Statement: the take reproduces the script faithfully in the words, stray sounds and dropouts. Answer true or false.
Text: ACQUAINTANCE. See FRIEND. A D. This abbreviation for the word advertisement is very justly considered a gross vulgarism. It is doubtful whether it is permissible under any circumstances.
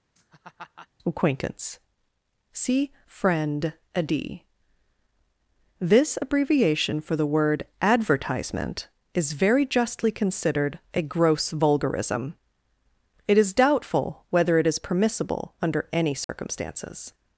false